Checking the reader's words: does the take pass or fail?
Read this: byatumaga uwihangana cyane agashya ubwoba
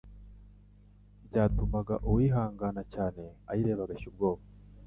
fail